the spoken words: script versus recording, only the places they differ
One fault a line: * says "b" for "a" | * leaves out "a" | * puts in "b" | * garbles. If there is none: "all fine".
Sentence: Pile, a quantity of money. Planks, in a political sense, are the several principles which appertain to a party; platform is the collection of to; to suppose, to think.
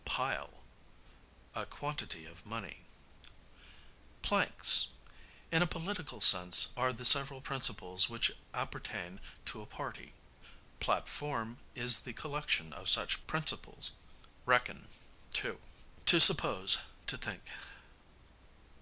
* puts in "such principles Reckon"